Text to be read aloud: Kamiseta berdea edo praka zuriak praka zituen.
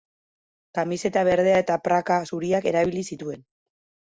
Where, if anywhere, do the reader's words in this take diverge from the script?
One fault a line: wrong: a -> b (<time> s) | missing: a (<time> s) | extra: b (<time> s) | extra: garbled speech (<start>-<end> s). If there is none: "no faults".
wrong: edo -> eta (1.6 s)
wrong: praka -> erabili (2.7 s)